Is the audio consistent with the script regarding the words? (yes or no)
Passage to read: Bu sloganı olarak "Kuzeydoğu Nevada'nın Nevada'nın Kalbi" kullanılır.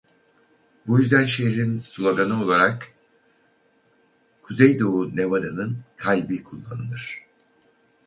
no